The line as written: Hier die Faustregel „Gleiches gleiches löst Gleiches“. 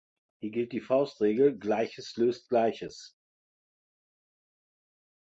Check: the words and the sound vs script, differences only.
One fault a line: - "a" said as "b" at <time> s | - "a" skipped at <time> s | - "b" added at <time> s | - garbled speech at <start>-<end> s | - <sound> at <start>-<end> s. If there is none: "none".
- "gilt" added at 0.5 s
- "gleiches" skipped at 2.2 s